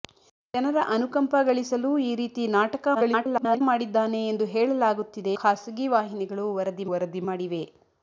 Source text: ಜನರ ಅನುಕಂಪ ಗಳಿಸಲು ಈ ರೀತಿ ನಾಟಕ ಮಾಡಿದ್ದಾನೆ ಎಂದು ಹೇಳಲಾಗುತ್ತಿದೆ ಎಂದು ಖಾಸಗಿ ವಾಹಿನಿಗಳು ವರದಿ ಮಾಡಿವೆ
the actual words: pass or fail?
fail